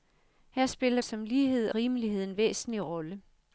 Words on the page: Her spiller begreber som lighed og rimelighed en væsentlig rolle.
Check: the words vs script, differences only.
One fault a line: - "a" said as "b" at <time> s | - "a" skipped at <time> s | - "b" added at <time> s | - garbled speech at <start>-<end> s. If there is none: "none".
- "begreber" skipped at 1.0 s
- "og" skipped at 1.7 s